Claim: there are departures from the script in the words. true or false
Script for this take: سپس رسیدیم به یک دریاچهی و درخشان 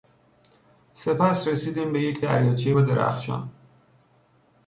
false